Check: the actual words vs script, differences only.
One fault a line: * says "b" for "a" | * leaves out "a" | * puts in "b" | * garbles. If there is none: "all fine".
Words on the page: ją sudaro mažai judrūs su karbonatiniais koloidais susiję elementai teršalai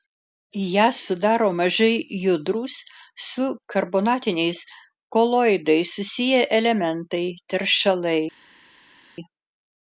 all fine